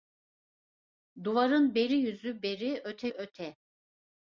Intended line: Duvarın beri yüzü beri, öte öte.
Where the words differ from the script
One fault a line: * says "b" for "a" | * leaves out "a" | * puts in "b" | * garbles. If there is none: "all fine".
all fine